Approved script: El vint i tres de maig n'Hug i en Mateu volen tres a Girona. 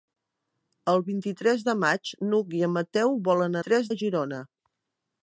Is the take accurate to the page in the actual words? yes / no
yes